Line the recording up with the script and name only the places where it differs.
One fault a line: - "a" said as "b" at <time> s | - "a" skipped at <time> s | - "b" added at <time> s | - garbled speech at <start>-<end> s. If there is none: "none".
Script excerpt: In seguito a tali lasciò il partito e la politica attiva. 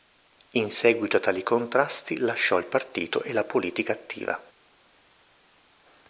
- "contrasti" added at 1.4 s